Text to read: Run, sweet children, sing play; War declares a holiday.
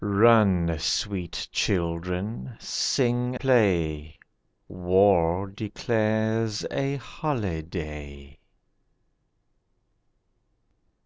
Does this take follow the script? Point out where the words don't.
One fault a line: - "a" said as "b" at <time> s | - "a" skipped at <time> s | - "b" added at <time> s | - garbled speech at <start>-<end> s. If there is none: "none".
none